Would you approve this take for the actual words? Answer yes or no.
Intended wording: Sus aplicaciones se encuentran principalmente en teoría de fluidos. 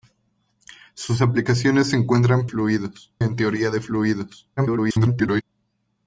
no